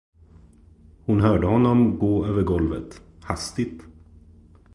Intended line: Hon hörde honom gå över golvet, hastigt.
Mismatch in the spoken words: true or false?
false